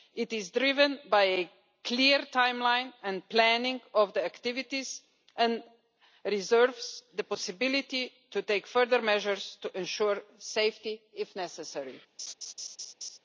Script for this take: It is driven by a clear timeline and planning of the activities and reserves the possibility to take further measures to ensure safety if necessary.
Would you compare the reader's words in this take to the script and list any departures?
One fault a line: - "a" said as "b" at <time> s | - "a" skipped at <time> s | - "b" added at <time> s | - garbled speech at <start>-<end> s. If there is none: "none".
none